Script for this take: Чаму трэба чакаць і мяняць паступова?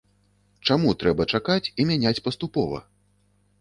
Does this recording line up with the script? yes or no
yes